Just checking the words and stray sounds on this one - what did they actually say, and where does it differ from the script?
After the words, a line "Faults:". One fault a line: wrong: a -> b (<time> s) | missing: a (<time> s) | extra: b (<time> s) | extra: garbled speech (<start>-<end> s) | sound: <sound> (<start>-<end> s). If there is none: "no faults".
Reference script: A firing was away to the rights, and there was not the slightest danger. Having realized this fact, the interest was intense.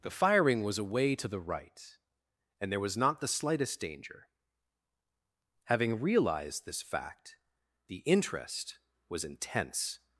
The firing was away to the right, and there was not the slightest danger. Having realized this fact, the interest was intense.
Faults:
wrong: A -> The (0.0 s)
wrong: rights -> right (1.4 s)